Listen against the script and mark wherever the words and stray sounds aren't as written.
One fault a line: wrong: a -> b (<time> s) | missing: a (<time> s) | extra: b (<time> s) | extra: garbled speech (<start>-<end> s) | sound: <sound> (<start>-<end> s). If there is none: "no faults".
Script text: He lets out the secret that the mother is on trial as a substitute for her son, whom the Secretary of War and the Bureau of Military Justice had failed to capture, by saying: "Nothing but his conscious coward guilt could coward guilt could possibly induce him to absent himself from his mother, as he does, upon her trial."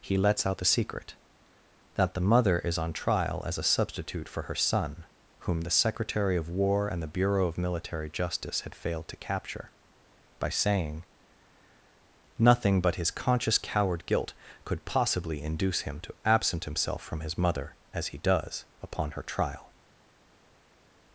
missing: coward guilt could (14.8 s)